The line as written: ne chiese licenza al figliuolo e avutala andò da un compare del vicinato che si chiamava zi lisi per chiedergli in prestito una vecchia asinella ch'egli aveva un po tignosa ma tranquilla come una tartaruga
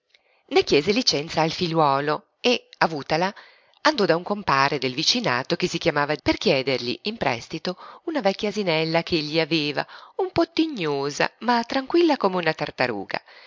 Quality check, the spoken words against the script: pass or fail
fail